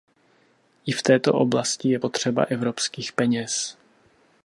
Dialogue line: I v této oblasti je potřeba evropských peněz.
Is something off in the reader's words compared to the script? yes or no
no